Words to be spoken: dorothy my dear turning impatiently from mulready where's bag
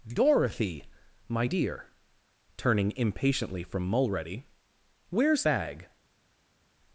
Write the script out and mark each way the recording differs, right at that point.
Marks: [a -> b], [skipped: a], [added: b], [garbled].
dorothy my dear turning impatiently from mulready where's bag